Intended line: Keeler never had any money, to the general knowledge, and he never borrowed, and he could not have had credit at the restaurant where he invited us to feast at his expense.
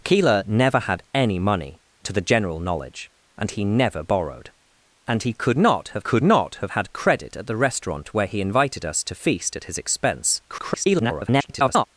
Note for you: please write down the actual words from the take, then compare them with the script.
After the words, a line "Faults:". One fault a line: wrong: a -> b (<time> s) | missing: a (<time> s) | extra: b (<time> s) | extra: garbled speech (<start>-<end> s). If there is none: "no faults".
Keeler never had any money, to the general knowledge, and he never borrowed, and he could not have could not have had credit at the restaurant where he invited us to feast at his expense. [garbled]
Faults:
extra: could not have (6.0 s)
extra: garbled speech (10.5-11.9 s)